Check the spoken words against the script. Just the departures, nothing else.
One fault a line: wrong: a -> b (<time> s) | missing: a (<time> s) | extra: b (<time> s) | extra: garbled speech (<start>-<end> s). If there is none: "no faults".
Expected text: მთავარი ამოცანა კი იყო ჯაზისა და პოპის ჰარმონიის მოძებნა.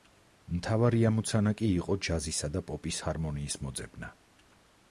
no faults